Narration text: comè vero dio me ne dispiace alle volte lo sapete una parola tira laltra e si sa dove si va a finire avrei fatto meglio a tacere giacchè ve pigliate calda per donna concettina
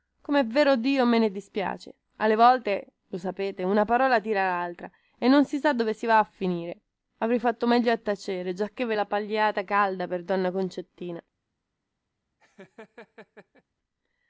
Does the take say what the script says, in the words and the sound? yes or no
no